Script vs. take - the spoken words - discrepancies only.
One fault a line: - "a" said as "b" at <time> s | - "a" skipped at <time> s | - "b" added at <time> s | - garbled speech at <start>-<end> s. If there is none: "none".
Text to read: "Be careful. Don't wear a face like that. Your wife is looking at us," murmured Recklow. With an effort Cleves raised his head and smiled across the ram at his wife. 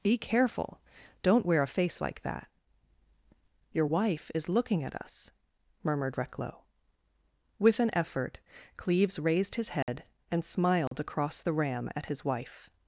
none